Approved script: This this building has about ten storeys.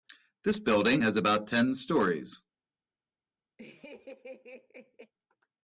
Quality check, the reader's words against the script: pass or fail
fail